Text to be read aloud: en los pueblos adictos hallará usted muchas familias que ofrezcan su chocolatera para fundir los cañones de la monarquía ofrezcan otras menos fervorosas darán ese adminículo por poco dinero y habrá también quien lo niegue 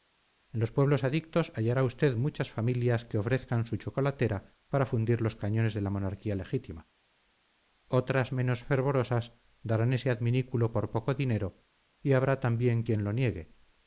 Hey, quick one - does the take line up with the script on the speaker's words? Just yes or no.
no